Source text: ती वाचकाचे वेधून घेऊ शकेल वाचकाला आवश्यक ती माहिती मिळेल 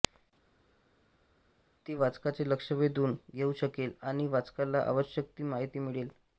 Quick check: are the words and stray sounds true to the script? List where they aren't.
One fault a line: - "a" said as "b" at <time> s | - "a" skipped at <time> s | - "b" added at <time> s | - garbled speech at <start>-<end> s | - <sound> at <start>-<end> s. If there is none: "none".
- "लक्ष" added at 2.5 s
- "आणि" added at 4.0 s